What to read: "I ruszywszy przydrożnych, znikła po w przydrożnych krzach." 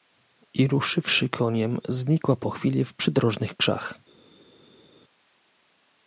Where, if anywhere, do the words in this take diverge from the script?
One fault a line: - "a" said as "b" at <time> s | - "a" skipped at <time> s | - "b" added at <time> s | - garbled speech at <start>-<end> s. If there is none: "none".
- "przydrożnych" said as "koniem" at 1.3 s
- "chwili" added at 2.5 s